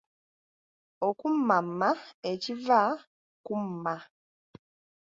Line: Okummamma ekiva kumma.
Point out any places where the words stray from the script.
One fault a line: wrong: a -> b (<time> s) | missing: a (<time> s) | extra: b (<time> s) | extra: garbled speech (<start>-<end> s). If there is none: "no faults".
no faults